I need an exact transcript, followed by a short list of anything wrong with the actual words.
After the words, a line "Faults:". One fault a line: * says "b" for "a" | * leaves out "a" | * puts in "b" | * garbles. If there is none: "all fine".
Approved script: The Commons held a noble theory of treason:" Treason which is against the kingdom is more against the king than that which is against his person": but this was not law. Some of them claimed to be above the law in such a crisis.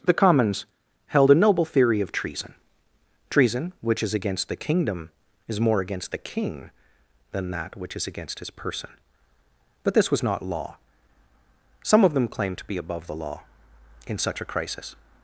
The Commons held a noble theory of treason:" Treason which is against the kingdom is more against the king than that which is against his person": but this was not law. Some of them claimed to be above the law in such a crisis.
Faults:
all fine